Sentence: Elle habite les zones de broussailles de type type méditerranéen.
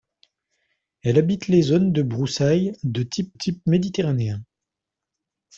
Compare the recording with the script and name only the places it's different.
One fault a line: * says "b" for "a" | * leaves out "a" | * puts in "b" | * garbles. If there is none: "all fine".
all fine